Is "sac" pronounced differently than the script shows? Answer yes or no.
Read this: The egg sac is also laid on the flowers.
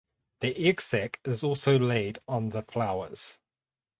no